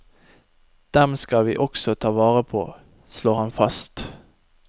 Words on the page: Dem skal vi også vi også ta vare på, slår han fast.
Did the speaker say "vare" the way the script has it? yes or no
yes